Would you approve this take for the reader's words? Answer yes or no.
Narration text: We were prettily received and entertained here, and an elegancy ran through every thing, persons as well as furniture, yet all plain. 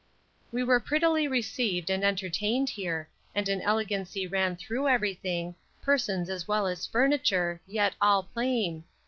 yes